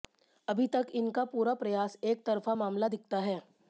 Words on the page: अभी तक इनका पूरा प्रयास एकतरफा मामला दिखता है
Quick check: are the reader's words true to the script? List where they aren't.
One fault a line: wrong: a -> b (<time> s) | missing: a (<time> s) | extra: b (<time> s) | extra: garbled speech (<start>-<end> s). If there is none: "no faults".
no faults